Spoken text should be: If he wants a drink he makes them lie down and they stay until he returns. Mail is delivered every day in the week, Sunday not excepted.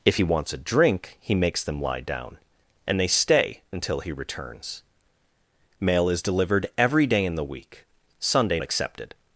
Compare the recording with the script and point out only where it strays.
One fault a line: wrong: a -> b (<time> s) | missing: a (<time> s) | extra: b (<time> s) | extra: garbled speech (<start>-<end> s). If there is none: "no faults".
missing: not (8.6 s)